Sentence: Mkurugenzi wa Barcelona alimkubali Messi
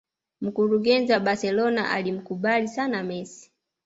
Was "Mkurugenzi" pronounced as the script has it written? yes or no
yes